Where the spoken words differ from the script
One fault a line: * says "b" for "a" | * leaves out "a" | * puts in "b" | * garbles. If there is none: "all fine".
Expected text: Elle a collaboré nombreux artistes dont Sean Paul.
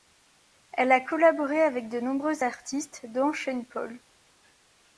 * puts in "avec de"